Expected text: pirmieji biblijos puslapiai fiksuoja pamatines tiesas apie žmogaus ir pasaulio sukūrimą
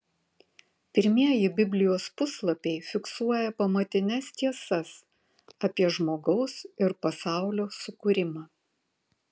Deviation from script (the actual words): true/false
false